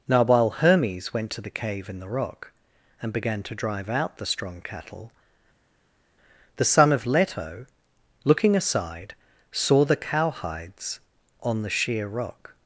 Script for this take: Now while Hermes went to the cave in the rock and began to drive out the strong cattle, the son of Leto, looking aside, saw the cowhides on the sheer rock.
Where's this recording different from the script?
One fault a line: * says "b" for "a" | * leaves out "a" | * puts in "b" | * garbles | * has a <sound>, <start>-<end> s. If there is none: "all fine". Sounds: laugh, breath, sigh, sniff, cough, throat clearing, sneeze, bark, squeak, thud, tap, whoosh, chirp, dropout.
all fine